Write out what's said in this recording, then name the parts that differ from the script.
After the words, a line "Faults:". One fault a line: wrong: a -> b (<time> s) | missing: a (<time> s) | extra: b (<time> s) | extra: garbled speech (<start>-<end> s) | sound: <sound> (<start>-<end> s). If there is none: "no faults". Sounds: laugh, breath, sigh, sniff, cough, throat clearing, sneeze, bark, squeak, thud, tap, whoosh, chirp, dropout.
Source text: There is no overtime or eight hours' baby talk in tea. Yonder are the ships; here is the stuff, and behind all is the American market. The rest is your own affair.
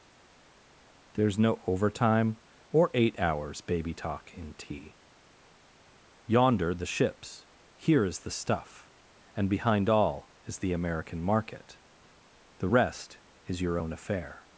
There is no overtime or eight hours' baby talk in tea. Yonder the ships; here is the stuff, and behind all is the American market. The rest is your own affair.
Faults:
missing: are (6.7 s)